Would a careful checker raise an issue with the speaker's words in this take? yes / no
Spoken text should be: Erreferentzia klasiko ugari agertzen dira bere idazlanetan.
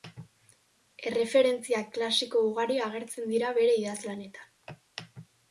no